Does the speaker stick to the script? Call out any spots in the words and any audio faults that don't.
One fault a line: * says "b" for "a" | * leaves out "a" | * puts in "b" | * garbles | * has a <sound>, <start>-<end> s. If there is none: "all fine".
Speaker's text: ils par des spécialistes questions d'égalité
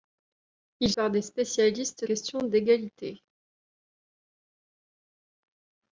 all fine